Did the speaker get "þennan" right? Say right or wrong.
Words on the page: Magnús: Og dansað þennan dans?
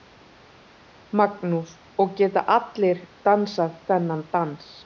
right